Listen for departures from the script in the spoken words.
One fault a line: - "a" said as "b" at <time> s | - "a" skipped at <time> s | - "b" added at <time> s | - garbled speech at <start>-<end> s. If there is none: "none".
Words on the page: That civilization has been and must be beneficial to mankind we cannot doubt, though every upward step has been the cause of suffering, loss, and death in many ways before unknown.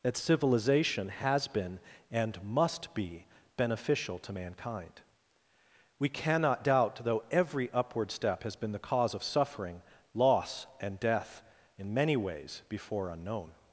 none